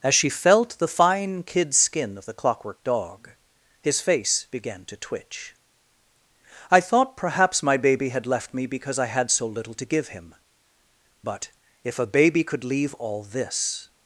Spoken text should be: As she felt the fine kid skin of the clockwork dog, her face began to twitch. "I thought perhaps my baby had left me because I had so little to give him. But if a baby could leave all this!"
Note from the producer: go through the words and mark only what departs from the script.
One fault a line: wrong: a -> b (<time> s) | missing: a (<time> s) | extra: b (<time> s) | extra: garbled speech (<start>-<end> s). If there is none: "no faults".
wrong: her -> his (3.8 s)